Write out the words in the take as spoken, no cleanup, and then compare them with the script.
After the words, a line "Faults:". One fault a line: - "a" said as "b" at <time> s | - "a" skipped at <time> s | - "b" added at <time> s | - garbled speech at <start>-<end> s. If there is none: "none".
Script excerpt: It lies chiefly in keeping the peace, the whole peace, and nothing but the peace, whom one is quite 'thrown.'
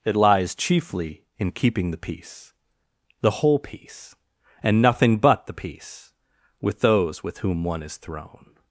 It lies chiefly in keeping the peace, the whole peace, and nothing but the peace, with those with whom one is 'thrown.'
Faults:
- "with those with" added at 6.6 s
- "quite" skipped at 8.0 s